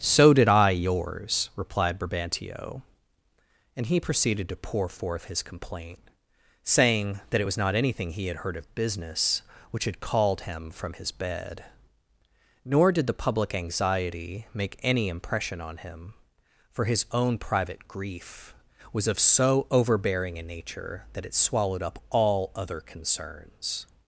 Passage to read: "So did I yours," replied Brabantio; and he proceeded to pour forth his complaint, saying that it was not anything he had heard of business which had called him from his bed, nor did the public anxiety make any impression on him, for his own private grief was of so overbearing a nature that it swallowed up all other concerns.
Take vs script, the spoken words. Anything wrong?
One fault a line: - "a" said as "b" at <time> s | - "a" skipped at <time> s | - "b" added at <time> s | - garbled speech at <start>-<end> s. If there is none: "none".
none